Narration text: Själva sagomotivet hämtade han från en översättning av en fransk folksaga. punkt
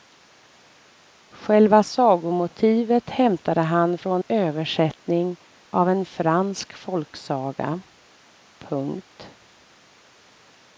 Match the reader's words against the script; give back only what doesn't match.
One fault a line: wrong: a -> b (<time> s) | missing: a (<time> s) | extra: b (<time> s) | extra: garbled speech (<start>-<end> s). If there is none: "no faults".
missing: en (4.2 s)